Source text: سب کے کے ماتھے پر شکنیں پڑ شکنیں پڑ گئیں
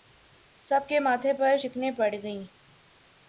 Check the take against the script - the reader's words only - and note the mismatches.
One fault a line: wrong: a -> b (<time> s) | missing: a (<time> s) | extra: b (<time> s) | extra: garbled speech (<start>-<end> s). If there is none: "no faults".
missing: کے (1.0 s)
missing: شکنیں پڑ (2.1 s)